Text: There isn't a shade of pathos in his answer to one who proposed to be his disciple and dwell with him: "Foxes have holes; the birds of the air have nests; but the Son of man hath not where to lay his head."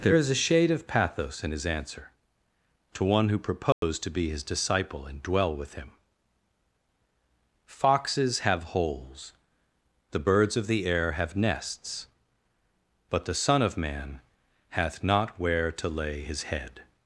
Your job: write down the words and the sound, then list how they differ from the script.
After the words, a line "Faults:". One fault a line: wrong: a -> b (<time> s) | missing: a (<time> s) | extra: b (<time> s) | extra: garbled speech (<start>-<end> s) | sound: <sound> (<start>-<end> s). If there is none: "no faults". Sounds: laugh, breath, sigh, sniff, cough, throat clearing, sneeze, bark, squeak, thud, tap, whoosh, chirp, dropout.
There is a shade of pathos in his answer to one who proposed to be his disciple and dwell with him: "Foxes have holes; the birds of the air have nests; but the Son of man hath not where to lay his head."
Faults:
wrong: isn't -> is (0.1 s)
sound: dropout (3.7-3.8 s)